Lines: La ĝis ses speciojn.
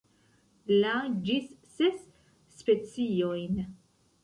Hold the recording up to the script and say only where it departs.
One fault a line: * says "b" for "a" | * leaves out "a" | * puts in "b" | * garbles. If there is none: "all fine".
all fine